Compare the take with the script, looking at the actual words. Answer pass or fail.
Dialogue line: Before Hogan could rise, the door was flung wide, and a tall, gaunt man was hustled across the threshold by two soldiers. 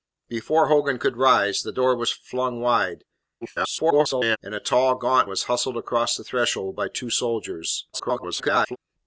fail